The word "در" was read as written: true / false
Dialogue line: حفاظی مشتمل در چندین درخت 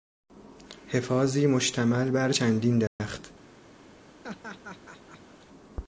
false